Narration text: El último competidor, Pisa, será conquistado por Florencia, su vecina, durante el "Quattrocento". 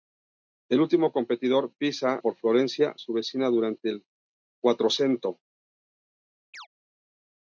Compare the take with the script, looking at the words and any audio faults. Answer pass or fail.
fail